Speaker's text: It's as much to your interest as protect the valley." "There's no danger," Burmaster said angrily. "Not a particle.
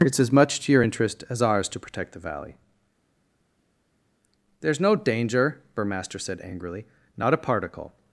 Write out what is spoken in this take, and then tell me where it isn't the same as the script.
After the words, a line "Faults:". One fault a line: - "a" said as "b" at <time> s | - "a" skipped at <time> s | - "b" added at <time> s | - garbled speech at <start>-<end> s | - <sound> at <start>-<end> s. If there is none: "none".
It's as much to your interest as ours to protect the valley." "There's no danger," Burmaster said angrily. "Not a particle.
Faults:
- "ours to" added at 1.4 s